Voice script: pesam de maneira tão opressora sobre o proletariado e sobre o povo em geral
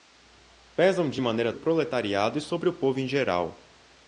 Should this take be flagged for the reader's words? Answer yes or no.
yes